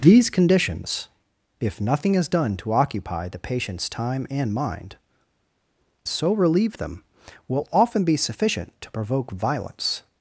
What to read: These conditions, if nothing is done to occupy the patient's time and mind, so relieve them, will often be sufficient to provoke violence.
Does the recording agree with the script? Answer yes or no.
yes